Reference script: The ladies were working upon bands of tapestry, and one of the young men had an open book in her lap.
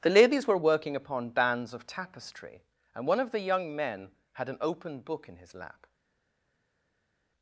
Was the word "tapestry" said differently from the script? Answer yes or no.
no